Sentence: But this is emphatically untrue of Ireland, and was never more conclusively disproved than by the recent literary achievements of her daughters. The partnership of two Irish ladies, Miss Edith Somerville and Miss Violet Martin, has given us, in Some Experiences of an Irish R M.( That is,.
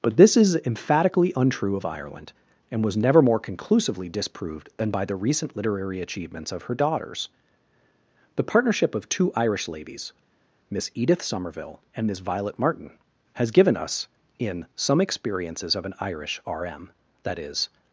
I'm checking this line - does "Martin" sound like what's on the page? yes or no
yes